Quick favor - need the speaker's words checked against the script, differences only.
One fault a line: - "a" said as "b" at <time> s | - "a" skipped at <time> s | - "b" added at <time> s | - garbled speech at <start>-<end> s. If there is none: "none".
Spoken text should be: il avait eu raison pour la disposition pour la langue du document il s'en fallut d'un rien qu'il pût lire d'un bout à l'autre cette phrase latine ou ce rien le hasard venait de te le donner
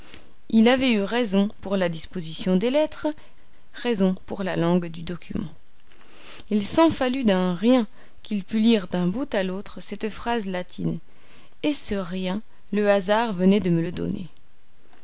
- "des lettres raison" added at 2.5 s
- "ou" said as "et" at 11.6 s
- "te" said as "me" at 13.7 s